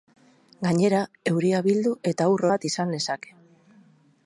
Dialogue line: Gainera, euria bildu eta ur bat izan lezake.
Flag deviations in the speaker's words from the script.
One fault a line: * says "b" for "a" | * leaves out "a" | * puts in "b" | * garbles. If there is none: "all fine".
all fine